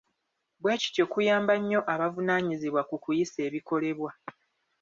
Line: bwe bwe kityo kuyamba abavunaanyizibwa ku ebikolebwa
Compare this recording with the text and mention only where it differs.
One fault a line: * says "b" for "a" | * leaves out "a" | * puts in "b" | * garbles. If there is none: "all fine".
* leaves out "bwe"
* puts in "nnyo"
* puts in "kuyisa"